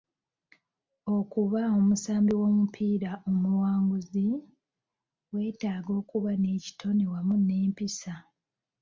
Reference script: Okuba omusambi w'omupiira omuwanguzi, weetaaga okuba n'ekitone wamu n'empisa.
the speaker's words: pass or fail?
pass